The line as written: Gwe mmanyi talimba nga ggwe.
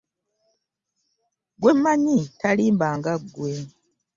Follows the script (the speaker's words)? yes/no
yes